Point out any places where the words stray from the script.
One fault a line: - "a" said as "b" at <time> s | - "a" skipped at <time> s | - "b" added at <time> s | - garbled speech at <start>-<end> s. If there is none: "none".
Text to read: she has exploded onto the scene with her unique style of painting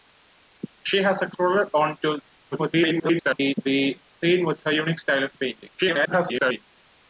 - garbled speech at 2.5-3.5 s
- garbled speech at 5.8-6.7 s